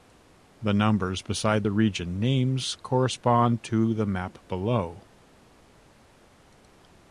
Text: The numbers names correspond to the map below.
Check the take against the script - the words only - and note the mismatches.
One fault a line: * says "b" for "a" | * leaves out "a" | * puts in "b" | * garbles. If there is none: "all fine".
* puts in "beside the region"